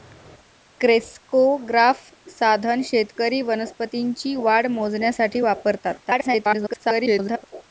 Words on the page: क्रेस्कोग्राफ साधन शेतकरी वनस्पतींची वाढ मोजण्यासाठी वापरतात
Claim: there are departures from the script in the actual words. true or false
true